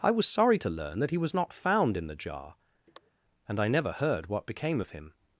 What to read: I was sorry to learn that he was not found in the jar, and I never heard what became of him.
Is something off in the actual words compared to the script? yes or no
no